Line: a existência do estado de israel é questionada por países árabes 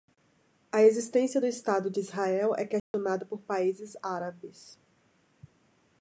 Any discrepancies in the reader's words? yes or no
no